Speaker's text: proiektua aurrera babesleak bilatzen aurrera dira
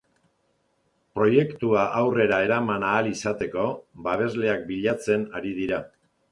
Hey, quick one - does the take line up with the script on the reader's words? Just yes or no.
no